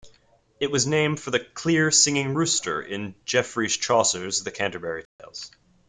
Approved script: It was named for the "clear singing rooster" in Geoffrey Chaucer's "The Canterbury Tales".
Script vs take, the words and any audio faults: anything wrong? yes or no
yes